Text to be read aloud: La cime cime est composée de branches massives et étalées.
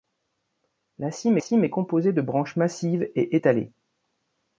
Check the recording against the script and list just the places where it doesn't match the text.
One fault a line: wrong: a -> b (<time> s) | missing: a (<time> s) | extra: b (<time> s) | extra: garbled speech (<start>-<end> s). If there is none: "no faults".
no faults